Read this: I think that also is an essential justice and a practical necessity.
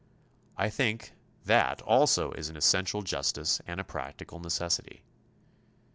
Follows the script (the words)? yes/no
yes